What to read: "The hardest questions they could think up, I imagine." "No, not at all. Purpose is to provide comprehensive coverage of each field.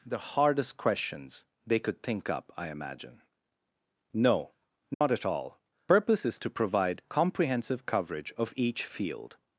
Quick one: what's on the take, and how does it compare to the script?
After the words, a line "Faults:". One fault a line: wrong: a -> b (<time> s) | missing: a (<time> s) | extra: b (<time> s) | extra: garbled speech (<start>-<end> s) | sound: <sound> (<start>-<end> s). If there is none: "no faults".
"The hardest questions they could think up, I imagine." "No, not at all. Purpose is to provide comprehensive coverage of each field.
Faults:
sound: dropout (4.9-5.0 s)